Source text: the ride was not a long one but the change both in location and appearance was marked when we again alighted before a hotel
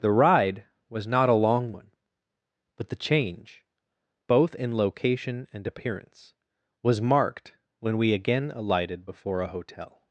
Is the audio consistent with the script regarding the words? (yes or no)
yes